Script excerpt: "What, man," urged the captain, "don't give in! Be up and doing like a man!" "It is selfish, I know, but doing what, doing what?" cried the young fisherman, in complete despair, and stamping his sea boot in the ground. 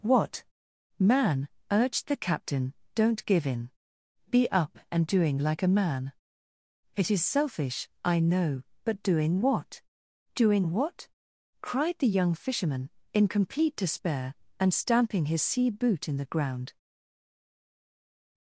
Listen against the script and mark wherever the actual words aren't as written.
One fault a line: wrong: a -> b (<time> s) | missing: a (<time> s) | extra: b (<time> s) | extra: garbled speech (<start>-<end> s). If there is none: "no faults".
no faults